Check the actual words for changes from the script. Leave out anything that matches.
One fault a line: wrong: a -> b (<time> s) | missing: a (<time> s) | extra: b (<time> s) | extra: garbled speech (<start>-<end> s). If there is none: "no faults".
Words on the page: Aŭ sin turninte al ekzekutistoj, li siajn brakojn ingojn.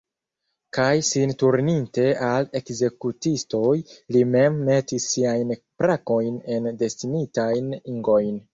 wrong: Aŭ -> Kaj (0.8 s)
extra: mem metis (4.4 s)
extra: en destinitajn (6.6 s)